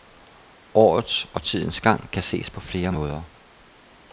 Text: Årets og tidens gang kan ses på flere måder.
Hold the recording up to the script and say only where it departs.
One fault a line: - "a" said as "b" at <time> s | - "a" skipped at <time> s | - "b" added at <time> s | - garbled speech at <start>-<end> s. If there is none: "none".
none